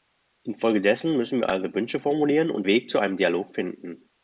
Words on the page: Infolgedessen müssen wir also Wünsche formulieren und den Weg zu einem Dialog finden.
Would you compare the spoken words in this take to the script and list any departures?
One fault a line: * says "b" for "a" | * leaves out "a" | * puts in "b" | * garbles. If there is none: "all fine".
* leaves out "den"